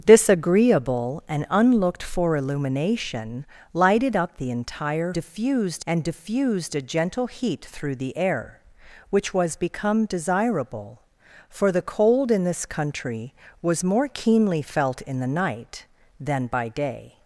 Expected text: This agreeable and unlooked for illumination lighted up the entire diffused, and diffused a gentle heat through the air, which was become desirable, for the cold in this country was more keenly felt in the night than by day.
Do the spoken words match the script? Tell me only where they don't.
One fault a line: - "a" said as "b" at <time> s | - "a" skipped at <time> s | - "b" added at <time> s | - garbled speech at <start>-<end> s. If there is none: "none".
none